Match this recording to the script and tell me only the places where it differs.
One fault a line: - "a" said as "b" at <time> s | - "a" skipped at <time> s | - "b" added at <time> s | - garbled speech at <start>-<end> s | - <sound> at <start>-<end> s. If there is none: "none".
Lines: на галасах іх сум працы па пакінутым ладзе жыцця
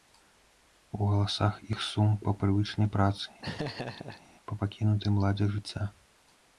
- "на" said as "у" at 1.0 s
- "па прывычнай" added at 2.2 s
- laugh at 3.4-4.2 s